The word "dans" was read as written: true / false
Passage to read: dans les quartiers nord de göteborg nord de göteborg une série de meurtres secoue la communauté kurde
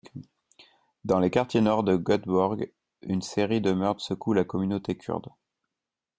true